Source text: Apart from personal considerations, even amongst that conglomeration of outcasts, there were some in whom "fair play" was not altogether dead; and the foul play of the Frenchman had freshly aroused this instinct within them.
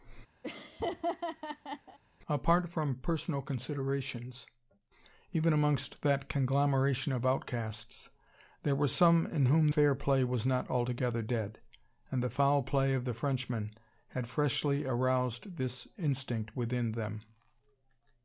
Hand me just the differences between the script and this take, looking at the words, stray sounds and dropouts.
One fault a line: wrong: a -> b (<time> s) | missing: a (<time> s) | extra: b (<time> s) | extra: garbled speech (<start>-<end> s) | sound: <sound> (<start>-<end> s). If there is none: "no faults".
sound: laugh (0.4-2.0 s)